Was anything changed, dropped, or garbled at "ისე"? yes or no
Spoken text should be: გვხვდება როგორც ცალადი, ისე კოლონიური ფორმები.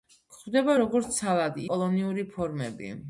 yes